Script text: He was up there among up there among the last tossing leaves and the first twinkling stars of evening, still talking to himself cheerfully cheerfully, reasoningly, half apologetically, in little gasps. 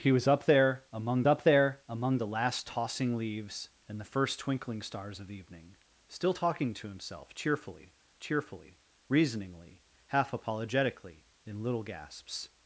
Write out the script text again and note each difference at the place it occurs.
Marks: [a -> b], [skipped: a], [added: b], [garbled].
He was up there among up there among the last tossing leaves and the first twinkling stars of evening, still talking to himself cheerfully cheerfully, reasoningly, half apologetically, in little gasps.